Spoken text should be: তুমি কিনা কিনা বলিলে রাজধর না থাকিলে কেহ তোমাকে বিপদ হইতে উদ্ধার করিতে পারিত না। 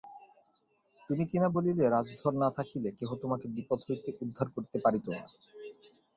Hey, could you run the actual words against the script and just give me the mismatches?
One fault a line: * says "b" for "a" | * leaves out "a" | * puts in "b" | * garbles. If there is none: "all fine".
* leaves out "কিনা"